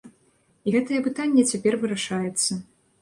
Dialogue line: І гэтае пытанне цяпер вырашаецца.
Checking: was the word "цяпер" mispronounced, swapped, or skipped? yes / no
no